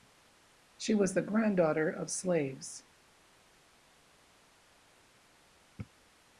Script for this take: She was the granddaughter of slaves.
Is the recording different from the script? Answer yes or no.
no